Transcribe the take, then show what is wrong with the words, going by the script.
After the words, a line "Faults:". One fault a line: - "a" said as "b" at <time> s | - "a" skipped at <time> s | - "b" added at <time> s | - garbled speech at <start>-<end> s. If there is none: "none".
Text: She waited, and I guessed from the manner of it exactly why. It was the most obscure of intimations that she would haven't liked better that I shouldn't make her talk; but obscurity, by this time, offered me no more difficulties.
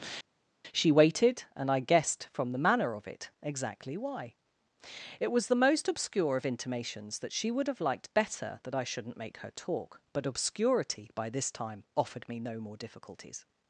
She waited, and I guessed from the manner of it exactly why. It was the most obscure of intimations that she would have liked better that I shouldn't make her talk; but obscurity, by this time, offered me no more difficulties.
Faults:
- "haven't" said as "have" at 7.7 s